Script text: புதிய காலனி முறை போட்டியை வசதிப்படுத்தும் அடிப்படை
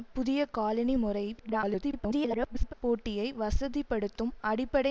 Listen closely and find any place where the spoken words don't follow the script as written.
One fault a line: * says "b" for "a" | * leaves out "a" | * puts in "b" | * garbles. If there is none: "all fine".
* garbles